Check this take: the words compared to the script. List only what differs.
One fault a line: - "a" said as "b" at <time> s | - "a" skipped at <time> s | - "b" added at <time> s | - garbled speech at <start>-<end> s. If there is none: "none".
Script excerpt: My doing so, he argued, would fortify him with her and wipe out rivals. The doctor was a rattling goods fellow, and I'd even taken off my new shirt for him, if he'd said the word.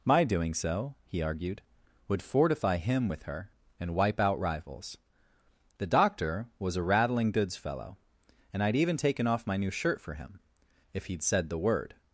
none